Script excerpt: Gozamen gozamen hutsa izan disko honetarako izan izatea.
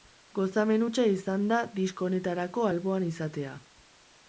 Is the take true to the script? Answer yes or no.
no